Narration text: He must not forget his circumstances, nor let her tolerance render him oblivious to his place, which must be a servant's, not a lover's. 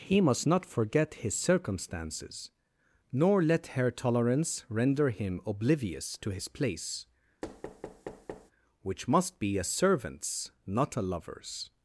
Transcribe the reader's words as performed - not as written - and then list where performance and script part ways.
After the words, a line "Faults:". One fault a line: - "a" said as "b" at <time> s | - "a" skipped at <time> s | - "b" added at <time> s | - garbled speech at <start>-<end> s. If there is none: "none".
He must not forget his circumstances, nor let her tolerance render him oblivious to his place, which must be a servant's, not a lover's.
Faults:
none